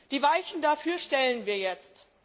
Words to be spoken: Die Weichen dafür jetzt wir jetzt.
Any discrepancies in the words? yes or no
yes